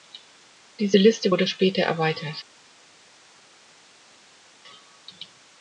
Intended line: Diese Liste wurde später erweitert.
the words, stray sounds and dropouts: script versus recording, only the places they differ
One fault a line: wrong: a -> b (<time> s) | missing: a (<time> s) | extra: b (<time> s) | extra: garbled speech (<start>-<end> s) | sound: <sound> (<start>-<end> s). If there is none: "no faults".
no faults